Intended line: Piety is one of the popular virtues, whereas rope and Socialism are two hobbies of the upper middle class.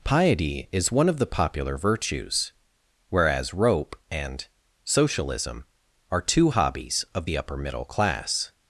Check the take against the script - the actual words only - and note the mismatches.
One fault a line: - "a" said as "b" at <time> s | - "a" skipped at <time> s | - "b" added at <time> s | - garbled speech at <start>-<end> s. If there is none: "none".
none